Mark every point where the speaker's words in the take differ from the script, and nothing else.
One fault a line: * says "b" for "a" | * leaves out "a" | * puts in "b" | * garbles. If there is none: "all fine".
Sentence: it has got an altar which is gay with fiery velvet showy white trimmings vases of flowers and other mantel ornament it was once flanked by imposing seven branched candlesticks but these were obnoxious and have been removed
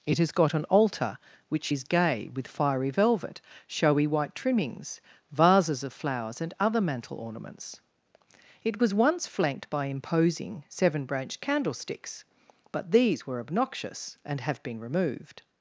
* says "ornaments" for "ornament"